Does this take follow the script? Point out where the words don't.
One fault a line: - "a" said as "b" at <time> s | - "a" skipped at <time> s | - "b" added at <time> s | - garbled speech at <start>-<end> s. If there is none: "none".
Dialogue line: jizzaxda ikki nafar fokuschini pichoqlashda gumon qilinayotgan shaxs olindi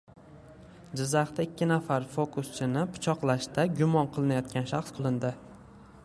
none